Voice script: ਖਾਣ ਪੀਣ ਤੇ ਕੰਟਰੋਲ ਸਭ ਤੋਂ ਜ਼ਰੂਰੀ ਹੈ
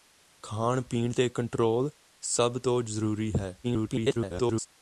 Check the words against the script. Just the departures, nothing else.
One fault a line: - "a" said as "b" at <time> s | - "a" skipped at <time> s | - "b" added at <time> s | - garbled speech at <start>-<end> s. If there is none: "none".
- garbled speech at 3.6-4.7 s